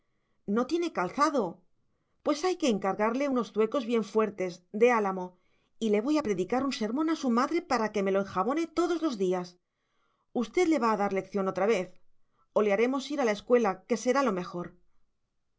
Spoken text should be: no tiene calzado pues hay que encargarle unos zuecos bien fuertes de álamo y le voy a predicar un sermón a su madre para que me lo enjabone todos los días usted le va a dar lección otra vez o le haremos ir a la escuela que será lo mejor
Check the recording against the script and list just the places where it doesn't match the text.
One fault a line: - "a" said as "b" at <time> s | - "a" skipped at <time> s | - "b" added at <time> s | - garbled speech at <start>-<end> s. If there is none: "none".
none